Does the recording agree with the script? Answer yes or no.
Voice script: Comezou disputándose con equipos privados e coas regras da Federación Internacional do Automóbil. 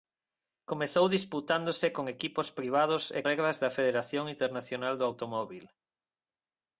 no